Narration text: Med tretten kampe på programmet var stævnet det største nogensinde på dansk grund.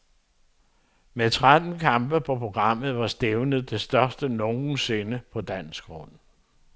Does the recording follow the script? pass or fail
pass